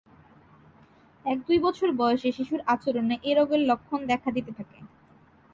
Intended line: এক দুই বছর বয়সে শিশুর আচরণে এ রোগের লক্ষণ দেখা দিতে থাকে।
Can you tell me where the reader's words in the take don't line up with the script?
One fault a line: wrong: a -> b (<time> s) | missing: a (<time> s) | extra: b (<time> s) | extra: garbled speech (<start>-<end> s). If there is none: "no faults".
no faults